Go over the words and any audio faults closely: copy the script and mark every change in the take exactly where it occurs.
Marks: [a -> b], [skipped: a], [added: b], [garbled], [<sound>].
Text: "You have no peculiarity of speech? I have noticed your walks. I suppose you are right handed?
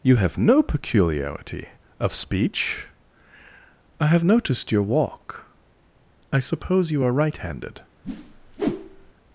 "You have no peculiarity of speech? I have noticed your [walks. -> walk] I suppose you are right handed? [whoosh]